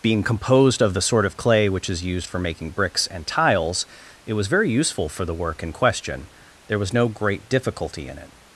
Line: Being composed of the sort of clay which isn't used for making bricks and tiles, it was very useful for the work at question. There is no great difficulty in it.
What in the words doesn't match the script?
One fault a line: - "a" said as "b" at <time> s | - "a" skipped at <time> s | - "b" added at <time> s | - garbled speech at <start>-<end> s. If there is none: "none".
- "isn't" said as "is" at 1.9 s
- "at" said as "in" at 5.6 s
- "is" said as "was" at 6.8 s